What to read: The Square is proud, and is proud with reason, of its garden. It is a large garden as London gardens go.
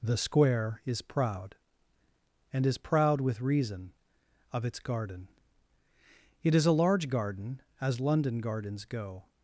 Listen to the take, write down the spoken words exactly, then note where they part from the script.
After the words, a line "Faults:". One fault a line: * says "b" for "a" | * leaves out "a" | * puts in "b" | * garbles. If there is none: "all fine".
The Square is proud, and is proud with reason, of its garden. It is a large garden as London gardens go.
Faults:
all fine